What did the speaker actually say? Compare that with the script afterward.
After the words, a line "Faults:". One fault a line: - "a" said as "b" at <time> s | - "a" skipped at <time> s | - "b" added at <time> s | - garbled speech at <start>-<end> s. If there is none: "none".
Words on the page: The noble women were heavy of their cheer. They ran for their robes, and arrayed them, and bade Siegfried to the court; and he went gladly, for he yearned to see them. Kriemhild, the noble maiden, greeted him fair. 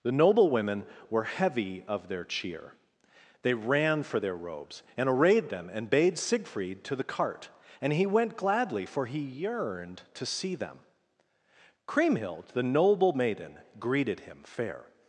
The noble women were heavy of their cheer. They ran for their robes, and arrayed them, and bade Siegfried to the cart; and he went gladly, for he yearned to see them. Kriemhild, the noble maiden, greeted him fair.
Faults:
- "court" said as "cart" at 7.0 s